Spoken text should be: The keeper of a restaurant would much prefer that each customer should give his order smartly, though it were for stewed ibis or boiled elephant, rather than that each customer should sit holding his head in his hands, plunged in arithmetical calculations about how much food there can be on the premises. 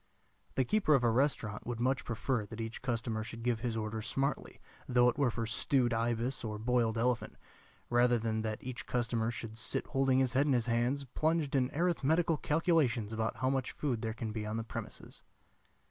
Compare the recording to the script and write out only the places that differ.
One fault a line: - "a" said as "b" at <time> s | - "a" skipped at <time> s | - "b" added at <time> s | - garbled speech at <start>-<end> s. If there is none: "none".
none